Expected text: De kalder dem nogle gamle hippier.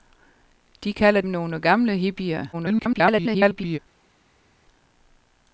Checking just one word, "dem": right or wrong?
wrong